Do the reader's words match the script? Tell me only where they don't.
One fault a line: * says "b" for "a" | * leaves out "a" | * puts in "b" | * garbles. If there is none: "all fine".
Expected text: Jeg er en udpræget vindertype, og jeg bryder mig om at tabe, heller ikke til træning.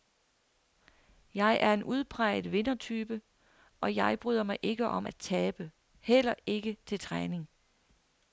* puts in "ikke"